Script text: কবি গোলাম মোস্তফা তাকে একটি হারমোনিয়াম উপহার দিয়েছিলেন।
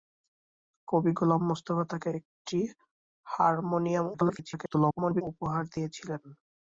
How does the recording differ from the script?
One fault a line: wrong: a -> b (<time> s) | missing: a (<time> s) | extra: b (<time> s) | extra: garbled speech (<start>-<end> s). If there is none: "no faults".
extra: garbled speech (4.1-5.2 s)